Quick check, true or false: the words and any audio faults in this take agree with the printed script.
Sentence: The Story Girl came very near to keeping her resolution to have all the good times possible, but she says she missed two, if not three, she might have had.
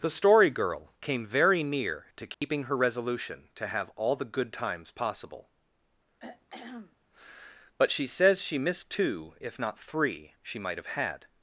false